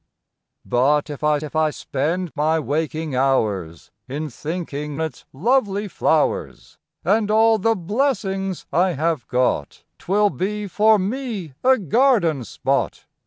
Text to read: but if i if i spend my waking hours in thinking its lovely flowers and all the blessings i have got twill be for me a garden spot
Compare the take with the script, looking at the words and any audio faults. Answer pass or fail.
pass